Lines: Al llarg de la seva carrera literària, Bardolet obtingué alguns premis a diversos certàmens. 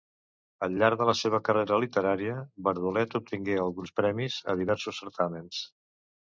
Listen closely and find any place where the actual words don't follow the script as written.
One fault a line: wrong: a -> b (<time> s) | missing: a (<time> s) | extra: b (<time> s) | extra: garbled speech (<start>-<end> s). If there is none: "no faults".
no faults